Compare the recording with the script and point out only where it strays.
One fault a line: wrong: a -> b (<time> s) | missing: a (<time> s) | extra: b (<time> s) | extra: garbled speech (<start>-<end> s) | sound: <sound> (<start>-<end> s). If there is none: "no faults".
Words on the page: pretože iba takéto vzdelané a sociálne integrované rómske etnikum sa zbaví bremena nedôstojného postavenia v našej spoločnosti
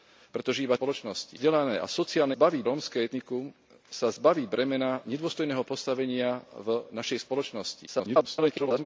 wrong: takéto -> spoločnosti (0.8 s)
wrong: integrované -> zbaví (2.3 s)
extra: garbled speech (7.9-8.9 s)